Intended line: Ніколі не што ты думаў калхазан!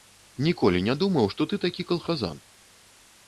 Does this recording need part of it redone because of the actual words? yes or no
yes